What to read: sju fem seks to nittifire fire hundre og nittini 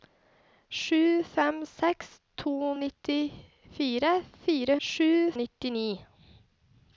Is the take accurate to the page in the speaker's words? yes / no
no